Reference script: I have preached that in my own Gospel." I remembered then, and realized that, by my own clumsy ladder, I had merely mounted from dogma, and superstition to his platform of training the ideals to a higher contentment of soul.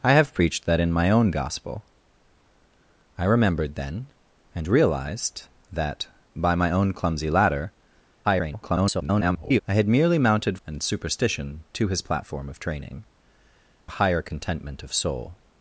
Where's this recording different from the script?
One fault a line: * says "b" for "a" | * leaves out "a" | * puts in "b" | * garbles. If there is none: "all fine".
* garbles
* leaves out "from dogma"
* leaves out "the ideals to"